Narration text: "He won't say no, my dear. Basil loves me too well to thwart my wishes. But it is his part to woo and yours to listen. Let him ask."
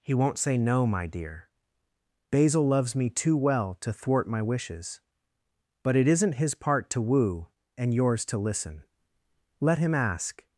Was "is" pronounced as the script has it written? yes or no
no